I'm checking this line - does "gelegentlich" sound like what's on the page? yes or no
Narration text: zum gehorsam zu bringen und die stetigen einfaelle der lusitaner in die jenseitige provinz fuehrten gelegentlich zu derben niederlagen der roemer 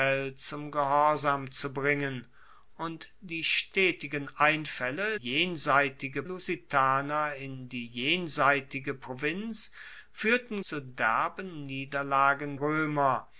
no